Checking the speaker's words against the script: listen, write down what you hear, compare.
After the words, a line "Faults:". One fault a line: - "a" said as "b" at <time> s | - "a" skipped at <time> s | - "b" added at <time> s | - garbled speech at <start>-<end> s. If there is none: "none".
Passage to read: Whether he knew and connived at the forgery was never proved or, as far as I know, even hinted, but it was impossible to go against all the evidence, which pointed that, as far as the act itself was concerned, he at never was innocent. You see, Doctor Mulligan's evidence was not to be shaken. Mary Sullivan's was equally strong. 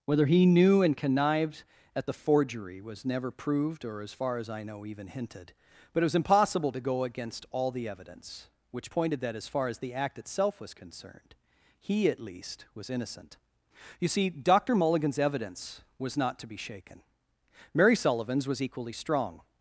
Whether he knew and connived at the forgery was never proved or, as far as I know, even hinted, but it was impossible to go against all the evidence, which pointed that, as far as the act itself was concerned, he at least was innocent. You see, Doctor Mulligan's evidence was not to be shaken. Mary Sullivan's was equally strong.
Faults:
- "never" said as "least" at 12.2 s